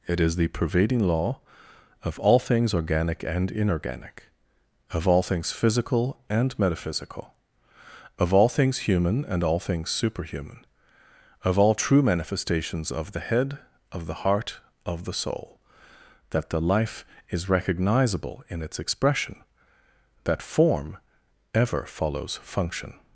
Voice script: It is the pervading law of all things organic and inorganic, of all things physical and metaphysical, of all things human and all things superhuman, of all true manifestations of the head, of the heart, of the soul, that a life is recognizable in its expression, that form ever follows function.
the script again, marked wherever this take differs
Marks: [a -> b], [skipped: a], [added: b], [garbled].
It is the pervading law of all things organic and inorganic, of all things physical and metaphysical, of all things human and all things superhuman, of all true manifestations of the head, of the heart, of the soul, that [a -> the] life is recognizable in its expression, that form ever follows function.